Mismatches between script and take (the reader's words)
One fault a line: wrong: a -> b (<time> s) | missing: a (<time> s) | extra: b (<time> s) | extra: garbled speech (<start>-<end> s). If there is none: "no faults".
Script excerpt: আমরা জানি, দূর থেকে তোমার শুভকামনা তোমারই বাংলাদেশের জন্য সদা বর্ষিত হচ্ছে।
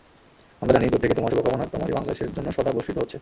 no faults